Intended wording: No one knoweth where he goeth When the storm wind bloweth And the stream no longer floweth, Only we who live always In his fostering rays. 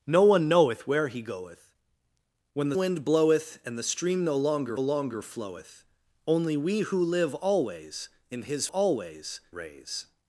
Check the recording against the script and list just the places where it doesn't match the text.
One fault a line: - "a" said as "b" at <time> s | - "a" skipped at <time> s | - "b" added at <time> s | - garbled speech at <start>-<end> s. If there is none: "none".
- "storm" skipped at 2.8 s
- "longer" added at 4.8 s
- "fostering" said as "always" at 8.7 s